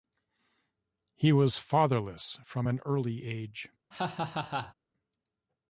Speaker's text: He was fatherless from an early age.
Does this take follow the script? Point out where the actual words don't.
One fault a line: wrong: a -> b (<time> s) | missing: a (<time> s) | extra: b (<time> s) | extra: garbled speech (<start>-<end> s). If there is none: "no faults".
no faults